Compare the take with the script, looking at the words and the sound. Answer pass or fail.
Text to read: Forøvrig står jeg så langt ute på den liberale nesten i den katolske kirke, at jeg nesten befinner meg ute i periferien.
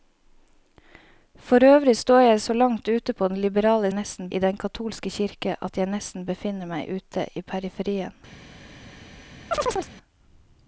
fail